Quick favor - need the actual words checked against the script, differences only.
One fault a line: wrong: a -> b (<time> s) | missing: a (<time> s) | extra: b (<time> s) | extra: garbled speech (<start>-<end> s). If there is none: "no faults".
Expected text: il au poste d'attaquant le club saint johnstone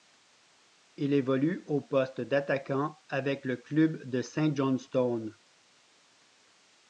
extra: évolue (1.1 s)
extra: avec (3.1 s)
extra: de (4.1 s)